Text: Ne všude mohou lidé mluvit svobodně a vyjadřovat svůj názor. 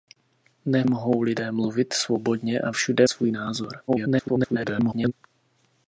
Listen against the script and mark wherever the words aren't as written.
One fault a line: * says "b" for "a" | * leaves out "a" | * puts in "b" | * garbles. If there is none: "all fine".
* leaves out "všude"
* says "všude" for "vyjadřovat"
* garbles